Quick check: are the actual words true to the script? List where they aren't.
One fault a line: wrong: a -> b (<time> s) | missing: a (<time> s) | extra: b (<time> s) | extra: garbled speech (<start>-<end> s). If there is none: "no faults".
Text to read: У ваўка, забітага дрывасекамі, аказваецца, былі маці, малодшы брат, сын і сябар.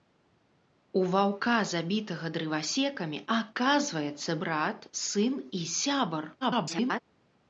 missing: былі маці малодшы (4.3 s)
extra: garbled speech (6.4-7.0 s)